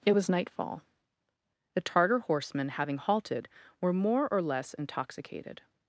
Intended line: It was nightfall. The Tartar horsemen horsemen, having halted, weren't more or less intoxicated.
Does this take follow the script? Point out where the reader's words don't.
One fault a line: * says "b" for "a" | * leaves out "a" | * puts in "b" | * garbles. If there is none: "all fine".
* leaves out "horsemen"
* says "were" for "weren't"